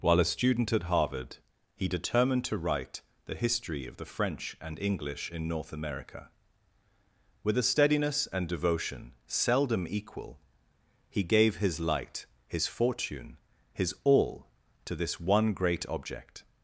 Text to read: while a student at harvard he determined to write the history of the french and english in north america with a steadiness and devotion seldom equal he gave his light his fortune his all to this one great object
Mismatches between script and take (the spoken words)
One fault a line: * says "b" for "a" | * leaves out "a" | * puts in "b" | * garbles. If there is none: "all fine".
all fine